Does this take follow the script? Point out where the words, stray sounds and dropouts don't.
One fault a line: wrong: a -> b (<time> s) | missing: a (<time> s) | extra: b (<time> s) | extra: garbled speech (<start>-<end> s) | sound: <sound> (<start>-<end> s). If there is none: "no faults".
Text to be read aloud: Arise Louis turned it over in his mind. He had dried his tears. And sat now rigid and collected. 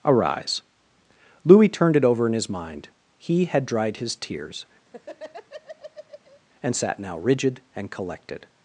sound: laugh (4.9-6.4 s)